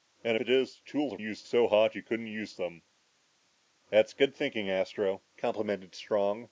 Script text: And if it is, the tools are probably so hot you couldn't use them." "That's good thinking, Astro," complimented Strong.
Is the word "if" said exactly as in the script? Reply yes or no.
no